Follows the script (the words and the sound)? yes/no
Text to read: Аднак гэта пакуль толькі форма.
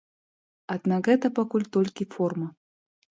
yes